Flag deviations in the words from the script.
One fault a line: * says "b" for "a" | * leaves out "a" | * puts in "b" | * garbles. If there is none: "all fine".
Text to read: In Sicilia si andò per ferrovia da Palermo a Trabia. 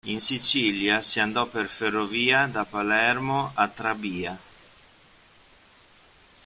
all fine